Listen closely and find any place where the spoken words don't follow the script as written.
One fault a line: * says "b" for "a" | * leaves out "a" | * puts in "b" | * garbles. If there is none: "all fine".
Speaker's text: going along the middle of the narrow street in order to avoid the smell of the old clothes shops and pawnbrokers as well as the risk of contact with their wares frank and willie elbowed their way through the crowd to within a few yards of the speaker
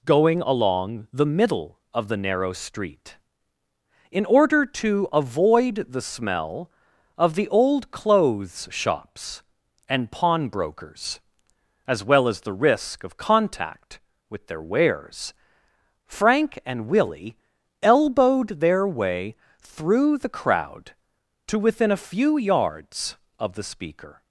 all fine